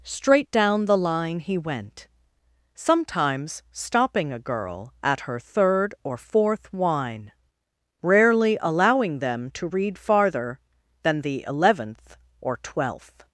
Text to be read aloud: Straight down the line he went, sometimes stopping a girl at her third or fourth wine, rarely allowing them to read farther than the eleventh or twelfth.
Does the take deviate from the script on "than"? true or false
false